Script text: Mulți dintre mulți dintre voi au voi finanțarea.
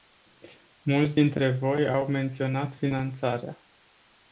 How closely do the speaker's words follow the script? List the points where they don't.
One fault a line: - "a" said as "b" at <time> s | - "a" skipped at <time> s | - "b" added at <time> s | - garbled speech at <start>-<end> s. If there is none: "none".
- "mulți dintre" skipped at 1.6 s
- "voi" said as "menționat" at 2.1 s